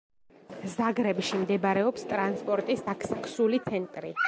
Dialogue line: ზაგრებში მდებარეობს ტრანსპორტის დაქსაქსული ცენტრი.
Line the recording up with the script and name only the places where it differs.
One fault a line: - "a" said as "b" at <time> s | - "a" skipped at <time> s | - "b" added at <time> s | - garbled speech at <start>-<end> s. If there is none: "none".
none